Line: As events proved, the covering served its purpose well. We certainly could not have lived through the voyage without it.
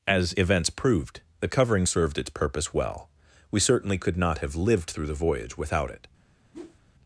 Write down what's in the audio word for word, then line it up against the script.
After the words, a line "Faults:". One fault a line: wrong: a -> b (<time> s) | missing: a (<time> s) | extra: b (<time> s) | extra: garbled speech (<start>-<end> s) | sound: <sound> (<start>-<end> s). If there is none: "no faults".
As events proved, the covering served its purpose well. We certainly could not have lived through the voyage without it.
Faults:
sound: whoosh (6.5-6.8 s)